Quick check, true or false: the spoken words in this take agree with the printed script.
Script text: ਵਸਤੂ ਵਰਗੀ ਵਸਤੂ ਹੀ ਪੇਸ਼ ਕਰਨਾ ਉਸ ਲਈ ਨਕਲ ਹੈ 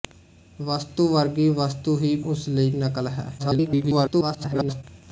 false